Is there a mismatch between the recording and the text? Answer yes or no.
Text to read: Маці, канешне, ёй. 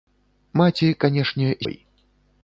no